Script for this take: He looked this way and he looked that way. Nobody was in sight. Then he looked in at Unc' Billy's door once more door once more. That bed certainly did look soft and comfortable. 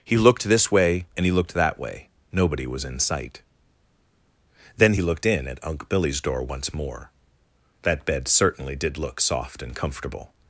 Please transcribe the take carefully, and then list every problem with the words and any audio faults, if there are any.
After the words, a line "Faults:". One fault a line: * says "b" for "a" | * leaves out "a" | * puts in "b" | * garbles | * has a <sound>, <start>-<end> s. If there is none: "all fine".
He looked this way and he looked that way. Nobody was in sight. Then he looked in at Unc' Billy's door once more. That bed certainly did look soft and comfortable.
Faults:
* leaves out "door once more"